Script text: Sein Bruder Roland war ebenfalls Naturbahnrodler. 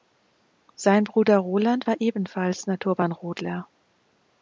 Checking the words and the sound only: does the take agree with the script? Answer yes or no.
yes